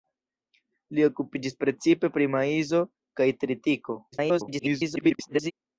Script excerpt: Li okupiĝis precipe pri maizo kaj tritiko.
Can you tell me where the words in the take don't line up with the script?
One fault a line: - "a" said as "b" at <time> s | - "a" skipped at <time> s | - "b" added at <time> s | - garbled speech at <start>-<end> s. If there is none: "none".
- garbled speech at 4.1-5.5 s